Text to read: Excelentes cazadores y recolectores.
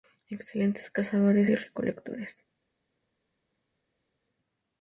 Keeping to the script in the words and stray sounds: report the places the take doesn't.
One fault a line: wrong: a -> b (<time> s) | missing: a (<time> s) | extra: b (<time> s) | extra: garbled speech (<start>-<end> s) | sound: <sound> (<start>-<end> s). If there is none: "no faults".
no faults